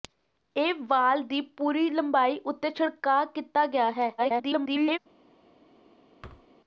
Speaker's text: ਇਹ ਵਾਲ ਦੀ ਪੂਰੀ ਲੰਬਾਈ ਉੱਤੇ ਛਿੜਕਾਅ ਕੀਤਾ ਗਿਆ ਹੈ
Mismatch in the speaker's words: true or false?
true